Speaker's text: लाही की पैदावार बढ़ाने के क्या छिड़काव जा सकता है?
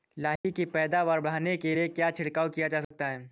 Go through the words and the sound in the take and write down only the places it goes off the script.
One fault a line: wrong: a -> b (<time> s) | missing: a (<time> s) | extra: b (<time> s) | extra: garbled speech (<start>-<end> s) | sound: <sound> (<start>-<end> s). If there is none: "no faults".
sound: dropout (0.4-0.4 s)
extra: लिए (1.7 s)
extra: किया (2.5 s)
sound: dropout (2.8-2.9 s)